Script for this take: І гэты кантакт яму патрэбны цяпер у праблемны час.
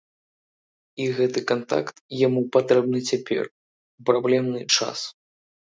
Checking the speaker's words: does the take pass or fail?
pass